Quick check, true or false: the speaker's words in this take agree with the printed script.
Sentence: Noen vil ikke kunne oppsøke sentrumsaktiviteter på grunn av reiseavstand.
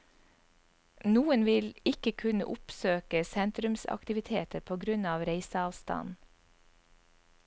true